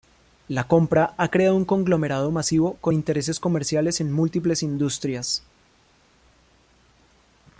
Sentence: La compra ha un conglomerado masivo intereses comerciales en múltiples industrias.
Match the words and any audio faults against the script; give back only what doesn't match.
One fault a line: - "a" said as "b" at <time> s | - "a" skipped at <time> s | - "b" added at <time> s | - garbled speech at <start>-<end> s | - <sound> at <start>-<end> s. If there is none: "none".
- "creado" added at 1.3 s
- "con" added at 2.8 s